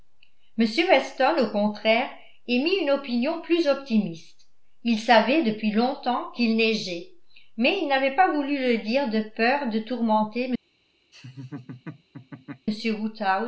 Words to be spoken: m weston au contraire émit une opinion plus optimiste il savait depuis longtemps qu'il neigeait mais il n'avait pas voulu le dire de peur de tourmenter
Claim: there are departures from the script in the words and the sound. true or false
true